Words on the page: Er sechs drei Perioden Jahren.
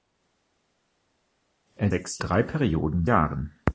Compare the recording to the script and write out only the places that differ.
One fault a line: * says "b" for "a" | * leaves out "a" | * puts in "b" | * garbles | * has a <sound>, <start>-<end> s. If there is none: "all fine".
all fine